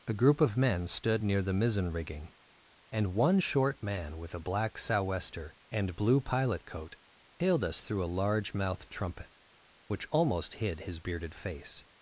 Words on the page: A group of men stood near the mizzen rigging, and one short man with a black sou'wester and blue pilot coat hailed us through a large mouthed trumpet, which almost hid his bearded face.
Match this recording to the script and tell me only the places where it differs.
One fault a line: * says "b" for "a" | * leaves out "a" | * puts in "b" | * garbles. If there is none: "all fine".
all fine